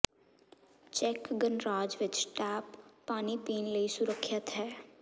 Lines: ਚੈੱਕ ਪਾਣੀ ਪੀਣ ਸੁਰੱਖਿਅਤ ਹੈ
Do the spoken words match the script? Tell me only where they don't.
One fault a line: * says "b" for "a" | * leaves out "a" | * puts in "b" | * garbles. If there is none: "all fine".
* puts in "ਗਣਰਾਜ ਵਿਚ ਟੈਪ"
* puts in "ਲਈ"